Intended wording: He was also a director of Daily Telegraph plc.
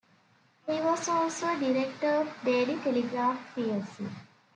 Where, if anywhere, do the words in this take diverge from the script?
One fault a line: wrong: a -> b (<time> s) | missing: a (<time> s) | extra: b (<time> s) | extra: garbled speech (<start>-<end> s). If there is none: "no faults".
no faults